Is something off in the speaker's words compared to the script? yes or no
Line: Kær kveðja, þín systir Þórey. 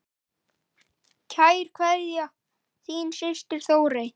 no